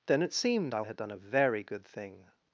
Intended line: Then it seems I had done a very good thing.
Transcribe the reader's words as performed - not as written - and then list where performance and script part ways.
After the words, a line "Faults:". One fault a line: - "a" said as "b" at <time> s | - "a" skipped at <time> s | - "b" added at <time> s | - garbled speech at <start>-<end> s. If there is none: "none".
Then it seemed I had done a very good thing.
Faults:
- "seems" said as "seemed" at 0.3 s